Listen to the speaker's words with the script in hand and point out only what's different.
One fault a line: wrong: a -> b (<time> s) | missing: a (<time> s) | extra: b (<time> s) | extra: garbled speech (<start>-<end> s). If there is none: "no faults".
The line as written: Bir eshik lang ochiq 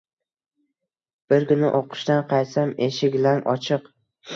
extra: kuni o'qishdan qaytsam (1.5 s)